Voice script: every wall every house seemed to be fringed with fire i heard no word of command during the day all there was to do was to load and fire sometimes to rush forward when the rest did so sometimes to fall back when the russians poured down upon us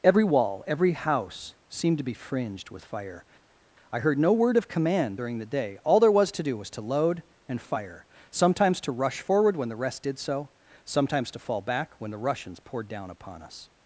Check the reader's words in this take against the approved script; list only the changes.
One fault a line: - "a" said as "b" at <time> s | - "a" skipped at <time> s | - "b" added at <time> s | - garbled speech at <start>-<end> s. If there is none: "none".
none